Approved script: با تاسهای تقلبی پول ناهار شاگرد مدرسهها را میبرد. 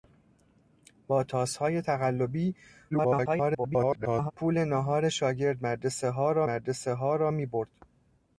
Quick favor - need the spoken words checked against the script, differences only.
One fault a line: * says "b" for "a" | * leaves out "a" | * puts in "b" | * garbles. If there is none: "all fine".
* garbles
* puts in "مدرسهها را"